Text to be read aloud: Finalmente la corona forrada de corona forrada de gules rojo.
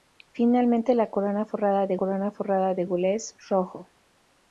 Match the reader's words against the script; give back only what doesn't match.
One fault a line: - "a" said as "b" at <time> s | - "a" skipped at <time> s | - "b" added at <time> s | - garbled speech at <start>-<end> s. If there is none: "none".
none